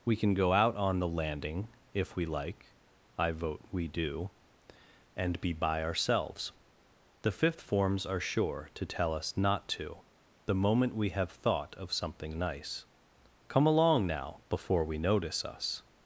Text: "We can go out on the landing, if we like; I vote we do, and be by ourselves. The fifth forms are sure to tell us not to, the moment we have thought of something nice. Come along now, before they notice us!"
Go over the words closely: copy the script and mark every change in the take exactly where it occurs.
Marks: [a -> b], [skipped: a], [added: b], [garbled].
"We can go out on the landing, if we like; I vote we do, and be by ourselves. The fifth forms are sure to tell us not to, the moment we have thought of something nice. Come along now, before [they -> we] notice us!"